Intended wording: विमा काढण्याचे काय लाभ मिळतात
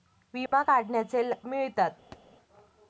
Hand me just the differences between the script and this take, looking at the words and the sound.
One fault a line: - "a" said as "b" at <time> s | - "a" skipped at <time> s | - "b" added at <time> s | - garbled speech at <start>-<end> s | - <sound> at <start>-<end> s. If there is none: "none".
- dropout at 0.5-0.5 s
- "काय लाभ" skipped at 1.2 s
- thud at 2.1-2.2 s